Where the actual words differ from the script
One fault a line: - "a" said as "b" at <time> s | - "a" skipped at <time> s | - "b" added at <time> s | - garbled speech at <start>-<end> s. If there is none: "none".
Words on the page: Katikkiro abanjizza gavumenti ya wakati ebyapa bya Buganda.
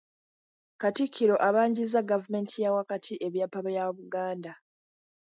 none